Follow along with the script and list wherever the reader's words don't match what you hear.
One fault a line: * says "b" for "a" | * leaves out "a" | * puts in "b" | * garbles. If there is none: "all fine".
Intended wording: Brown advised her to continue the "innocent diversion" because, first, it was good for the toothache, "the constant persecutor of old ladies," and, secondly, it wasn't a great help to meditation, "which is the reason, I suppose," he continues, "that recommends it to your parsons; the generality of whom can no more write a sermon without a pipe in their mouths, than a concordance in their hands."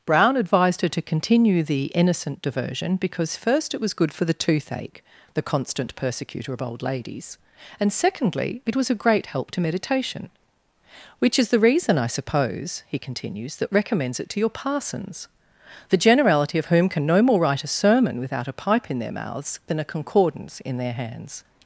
* says "was" for "wasn't"